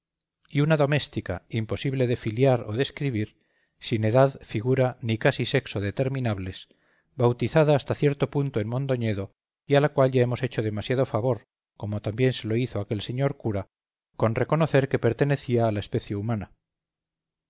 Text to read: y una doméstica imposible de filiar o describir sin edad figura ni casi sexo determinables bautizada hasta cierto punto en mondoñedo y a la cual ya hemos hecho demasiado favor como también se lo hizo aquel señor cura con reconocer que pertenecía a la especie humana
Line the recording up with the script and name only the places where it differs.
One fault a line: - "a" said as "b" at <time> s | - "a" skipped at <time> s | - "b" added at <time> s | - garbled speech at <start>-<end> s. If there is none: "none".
none